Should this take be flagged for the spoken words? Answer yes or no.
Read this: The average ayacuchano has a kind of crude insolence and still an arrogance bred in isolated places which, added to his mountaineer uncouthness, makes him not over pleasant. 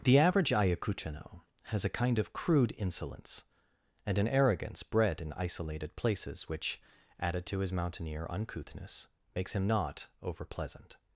yes